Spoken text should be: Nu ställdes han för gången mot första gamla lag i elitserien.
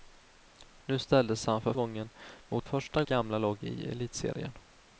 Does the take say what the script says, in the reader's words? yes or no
yes